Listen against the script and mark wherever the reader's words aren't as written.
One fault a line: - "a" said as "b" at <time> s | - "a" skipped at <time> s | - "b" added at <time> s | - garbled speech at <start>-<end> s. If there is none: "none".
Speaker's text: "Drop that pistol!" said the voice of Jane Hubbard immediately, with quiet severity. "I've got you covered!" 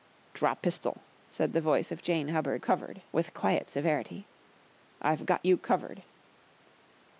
- "that" skipped at 0.6 s
- "immediately" said as "covered" at 2.6 s